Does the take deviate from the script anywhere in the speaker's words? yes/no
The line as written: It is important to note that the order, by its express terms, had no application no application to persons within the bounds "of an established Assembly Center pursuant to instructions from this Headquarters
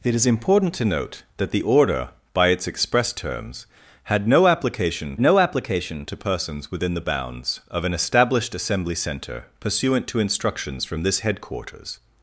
no